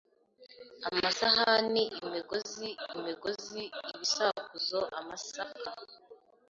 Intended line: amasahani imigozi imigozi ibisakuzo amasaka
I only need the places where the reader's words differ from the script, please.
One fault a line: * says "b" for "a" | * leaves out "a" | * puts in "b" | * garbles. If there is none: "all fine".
all fine